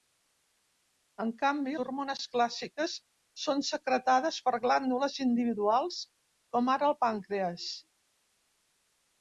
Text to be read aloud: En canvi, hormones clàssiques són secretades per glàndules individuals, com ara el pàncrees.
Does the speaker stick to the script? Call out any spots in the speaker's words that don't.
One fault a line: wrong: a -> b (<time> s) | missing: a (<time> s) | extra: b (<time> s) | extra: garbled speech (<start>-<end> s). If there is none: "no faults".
no faults